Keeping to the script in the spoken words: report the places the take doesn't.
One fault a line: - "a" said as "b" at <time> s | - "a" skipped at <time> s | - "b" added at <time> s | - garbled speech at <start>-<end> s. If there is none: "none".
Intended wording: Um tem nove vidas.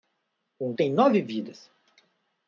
none